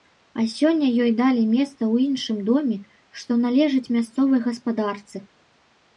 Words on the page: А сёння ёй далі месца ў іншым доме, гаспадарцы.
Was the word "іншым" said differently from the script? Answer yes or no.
no